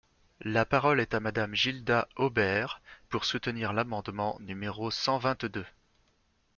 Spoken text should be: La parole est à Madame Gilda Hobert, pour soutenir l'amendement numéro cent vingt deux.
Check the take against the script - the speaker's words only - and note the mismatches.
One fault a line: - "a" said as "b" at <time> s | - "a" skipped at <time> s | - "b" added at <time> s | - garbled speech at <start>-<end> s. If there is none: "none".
none